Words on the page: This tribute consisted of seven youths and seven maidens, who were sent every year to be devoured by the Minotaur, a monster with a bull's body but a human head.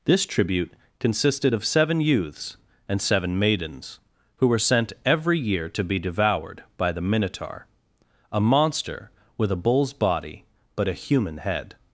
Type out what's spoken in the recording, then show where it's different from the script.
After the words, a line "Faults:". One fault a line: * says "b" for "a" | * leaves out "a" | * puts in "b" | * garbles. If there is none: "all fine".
This tribute consisted of seven youths and seven maidens, who were sent every year to be devoured by the Minotaur, a monster with a bull's body but a human head.
Faults:
all fine